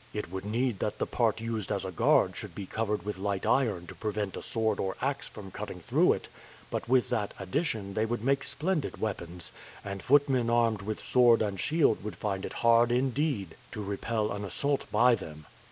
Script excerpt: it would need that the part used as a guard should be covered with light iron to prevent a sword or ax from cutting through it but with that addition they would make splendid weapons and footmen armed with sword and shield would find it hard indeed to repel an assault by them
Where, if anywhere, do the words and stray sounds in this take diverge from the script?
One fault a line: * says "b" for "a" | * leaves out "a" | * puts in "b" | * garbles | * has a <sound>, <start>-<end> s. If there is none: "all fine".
all fine